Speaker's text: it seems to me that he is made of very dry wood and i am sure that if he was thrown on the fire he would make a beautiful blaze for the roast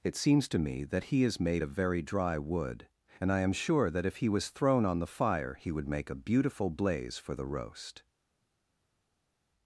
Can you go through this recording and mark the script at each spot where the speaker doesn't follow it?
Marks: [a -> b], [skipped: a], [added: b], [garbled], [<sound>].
it seems to me that he is made of very dry wood and i am sure that if he was thrown on the fire he would make a beautiful blaze for the roast